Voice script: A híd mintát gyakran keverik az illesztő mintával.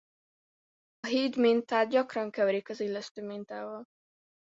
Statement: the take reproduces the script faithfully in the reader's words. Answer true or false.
true